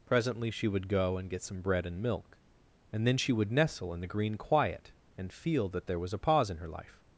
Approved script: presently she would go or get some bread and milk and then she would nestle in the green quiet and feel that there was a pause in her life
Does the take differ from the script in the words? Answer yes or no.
yes